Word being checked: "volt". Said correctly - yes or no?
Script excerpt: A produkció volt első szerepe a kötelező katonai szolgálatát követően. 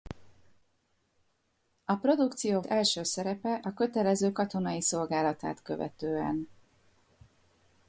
no